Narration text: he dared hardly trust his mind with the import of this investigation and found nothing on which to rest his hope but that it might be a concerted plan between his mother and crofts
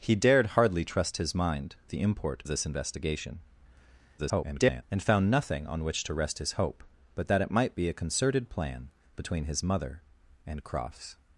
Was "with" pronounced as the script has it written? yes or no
no